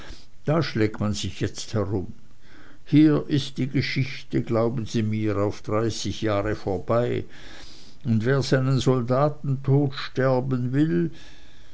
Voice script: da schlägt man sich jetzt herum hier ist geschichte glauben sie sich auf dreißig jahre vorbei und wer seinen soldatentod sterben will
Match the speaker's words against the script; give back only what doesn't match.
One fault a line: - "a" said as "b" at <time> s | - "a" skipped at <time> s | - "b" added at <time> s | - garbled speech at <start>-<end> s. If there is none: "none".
- "die" added at 3.6 s
- "sich" said as "mir" at 5.0 s